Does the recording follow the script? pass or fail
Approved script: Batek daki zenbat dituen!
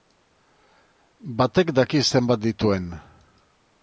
pass